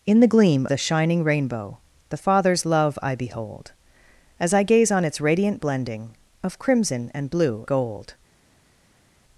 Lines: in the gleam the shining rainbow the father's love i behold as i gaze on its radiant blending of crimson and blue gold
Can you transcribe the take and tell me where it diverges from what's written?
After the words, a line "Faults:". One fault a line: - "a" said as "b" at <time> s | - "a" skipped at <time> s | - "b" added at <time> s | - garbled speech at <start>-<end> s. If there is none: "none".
in the gleam the shining rainbow the father's love i behold as i gaze on its radiant blending of crimson and blue gold
Faults:
none